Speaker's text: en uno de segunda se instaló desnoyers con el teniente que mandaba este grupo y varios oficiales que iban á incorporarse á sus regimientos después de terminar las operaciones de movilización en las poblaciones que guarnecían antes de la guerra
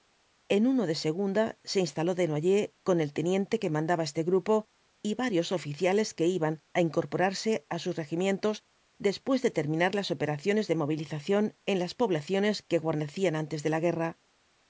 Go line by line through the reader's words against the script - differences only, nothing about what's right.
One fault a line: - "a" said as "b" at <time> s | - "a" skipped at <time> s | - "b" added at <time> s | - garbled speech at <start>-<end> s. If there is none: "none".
none